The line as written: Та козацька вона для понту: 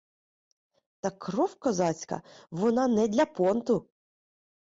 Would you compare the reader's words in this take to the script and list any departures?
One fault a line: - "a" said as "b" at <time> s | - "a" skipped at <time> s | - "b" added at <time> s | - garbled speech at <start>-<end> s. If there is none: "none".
- "кров" added at 1.1 s
- "не" added at 2.9 s